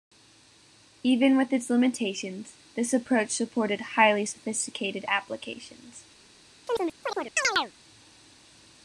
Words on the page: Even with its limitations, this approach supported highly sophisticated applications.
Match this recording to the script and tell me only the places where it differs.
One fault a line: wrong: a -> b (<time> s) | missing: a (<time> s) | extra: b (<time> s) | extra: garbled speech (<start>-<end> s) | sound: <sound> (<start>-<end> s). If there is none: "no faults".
sound: chirp (6.7-7.7 s)